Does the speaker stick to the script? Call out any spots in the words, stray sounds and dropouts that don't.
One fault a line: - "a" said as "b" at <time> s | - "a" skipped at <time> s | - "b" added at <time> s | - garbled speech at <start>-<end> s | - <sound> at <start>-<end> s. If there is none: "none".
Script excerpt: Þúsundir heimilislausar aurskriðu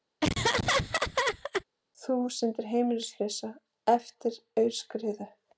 - laugh at 0.2-1.6 s
- "eftir" added at 4.0 s